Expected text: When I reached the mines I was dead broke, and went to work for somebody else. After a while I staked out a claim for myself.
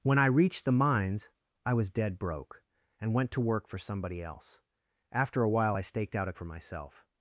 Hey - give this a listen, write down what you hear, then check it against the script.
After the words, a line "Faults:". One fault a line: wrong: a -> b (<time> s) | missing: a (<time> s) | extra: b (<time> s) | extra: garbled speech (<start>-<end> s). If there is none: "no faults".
When I reached the mines I was dead broke, and went to work for somebody else. After a while I staked out a for myself.
Faults:
missing: claim (6.3 s)